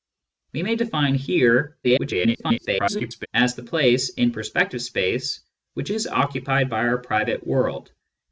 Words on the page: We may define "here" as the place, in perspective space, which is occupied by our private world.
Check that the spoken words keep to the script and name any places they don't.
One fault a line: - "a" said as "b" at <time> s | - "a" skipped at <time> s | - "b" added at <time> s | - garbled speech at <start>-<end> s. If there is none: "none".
- garbled speech at 1.8-3.3 s